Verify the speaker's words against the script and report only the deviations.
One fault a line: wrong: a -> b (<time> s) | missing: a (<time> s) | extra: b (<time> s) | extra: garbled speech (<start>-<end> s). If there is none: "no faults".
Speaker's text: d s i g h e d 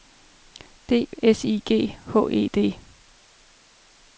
no faults